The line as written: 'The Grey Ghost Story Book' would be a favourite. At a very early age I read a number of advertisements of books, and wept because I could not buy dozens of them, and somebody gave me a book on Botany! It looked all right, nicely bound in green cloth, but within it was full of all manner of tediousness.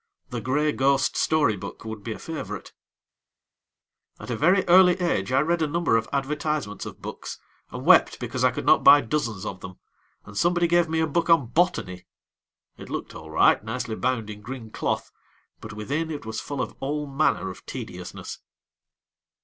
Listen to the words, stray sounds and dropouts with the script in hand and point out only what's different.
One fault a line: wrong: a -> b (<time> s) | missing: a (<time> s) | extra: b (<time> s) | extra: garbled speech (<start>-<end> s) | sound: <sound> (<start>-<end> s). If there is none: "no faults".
no faults